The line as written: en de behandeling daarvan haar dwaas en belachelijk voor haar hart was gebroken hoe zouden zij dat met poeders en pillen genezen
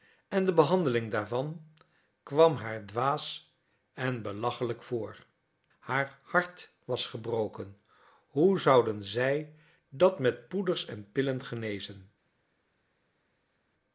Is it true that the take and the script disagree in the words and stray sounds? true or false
true